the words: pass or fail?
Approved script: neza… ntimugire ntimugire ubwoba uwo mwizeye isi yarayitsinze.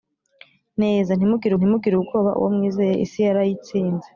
pass